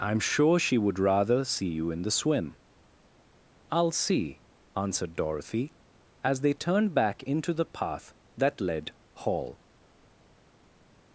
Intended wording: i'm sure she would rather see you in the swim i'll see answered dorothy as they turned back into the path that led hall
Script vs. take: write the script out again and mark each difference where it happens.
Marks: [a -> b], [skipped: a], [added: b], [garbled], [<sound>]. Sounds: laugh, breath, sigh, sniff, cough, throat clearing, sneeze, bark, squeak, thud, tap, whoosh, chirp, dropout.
i'm sure she would rather see you in the swim i'll see answered dorothy as they turned back into the path that led hall